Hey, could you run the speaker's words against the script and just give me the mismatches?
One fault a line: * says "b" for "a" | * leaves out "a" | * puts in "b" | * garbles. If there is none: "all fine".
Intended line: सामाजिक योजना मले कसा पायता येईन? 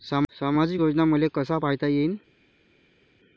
all fine